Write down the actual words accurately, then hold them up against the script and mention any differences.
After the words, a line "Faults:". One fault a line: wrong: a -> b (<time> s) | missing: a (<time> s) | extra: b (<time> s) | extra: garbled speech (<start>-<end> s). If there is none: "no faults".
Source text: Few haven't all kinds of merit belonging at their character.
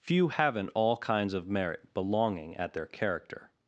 Few haven't all kinds of merit belonging at their character.
Faults:
no faults